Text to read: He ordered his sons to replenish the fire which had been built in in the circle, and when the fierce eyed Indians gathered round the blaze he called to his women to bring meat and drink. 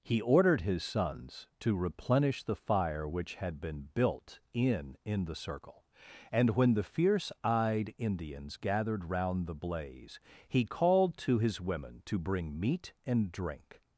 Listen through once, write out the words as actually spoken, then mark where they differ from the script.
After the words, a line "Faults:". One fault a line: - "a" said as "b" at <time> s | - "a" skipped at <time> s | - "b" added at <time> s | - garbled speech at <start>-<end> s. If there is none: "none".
He ordered his sons to replenish the fire which had been built in in the circle, and when the fierce eyed Indians gathered round the blaze he called to his women to bring meat and drink.
Faults:
none